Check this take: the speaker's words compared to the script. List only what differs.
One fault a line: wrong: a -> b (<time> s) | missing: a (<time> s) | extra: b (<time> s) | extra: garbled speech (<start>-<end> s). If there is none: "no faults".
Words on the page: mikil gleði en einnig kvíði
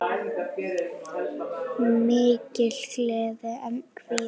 missing: einnig (3.8 s)